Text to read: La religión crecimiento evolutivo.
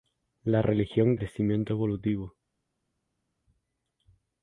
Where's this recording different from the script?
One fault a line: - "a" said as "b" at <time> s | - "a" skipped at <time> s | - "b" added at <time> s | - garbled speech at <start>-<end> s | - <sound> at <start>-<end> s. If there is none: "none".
none